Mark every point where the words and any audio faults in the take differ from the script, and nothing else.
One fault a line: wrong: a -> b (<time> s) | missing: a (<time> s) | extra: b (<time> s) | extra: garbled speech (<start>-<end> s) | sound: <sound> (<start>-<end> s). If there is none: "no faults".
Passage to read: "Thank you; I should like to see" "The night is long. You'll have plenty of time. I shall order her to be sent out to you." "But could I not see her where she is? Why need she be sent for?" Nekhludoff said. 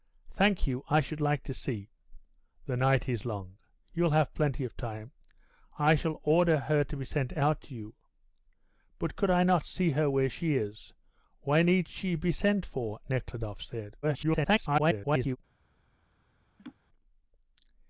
extra: garbled speech (14.0-15.4 s)
sound: laugh (16.6-16.8 s)